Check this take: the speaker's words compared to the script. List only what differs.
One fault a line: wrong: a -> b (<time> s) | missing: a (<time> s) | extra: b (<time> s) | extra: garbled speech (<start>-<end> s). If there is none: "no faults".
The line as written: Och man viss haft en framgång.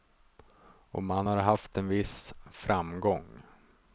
wrong: viss -> har (1.2 s)
extra: viss (1.9 s)